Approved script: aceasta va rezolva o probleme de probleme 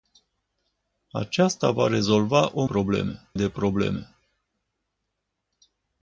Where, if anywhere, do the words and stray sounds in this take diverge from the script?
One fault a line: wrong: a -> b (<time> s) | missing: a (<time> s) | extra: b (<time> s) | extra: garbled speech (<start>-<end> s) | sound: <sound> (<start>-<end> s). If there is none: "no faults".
no faults